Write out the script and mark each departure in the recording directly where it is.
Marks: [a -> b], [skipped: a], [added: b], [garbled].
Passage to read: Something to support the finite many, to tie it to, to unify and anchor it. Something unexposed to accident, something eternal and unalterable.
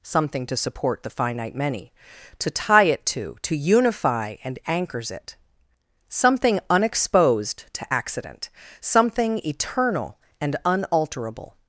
Something to support the finite many, to tie it to, to unify and [anchor -> anchors] it. Something unexposed to accident, something eternal and unalterable.